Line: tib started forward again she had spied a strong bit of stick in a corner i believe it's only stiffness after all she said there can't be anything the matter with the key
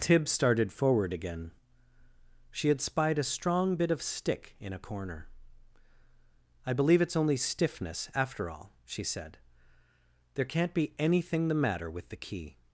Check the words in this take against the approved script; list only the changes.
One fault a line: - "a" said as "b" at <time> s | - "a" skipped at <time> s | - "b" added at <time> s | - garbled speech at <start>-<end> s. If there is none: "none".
none